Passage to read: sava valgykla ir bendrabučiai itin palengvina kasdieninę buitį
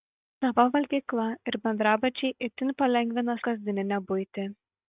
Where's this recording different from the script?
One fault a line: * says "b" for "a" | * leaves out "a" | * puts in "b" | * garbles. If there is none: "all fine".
all fine